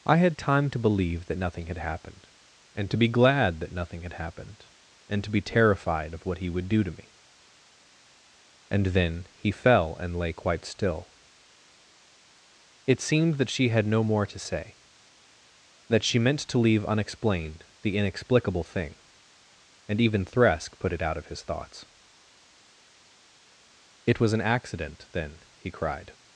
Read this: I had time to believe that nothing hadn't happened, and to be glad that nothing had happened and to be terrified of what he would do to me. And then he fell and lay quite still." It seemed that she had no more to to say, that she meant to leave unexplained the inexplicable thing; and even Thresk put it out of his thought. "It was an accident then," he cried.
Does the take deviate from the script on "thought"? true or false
true